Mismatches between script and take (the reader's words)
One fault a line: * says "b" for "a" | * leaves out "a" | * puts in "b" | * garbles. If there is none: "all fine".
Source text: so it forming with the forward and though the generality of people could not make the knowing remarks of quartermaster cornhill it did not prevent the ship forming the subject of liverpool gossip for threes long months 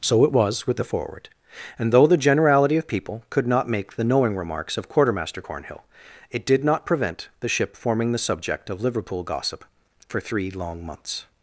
* says "was" for "forming"
* says "three" for "threes"